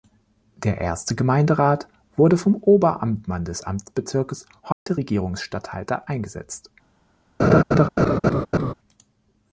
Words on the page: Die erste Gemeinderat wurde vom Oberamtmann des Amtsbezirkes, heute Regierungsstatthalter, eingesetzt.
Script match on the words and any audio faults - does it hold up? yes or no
no